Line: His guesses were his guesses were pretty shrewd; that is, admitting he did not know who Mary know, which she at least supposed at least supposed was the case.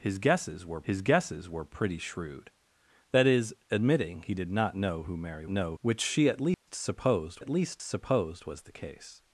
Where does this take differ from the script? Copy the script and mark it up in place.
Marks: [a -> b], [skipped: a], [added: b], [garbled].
His guesses were his guesses were pretty shrewd; that is, admitting he did not know who Mary know, which she at least supposed at least supposed was the case.